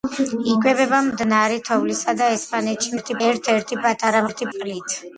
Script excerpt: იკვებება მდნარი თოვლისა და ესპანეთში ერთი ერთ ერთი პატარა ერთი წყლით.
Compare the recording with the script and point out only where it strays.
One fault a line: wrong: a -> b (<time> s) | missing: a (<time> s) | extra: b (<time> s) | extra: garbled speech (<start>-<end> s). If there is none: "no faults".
no faults